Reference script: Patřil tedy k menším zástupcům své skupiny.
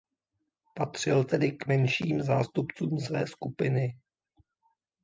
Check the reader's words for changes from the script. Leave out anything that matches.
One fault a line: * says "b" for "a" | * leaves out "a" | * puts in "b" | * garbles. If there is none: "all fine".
all fine